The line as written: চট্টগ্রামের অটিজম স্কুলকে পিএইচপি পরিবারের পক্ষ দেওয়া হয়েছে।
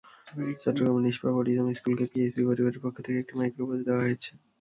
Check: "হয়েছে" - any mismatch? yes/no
no